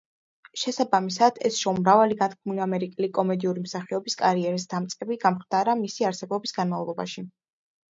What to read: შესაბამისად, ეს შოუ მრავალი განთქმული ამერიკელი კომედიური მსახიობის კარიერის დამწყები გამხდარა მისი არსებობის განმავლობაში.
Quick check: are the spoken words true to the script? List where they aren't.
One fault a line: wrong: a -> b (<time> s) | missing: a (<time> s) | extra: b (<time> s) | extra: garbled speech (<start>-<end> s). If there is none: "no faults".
no faults